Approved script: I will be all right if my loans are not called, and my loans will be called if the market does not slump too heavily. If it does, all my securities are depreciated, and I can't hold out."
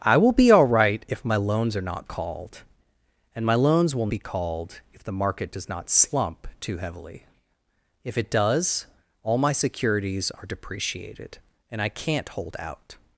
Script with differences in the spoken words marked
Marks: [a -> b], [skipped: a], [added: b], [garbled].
I will be all right if my loans are not called, and my loans will be called if the market does not slump too heavily. If it does, all my securities are depreciated, and I can't hold out."